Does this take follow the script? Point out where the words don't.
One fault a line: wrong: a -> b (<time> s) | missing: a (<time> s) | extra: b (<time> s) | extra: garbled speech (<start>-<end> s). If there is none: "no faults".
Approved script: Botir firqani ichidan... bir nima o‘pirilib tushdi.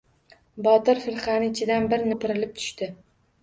missing: nima (2.1 s)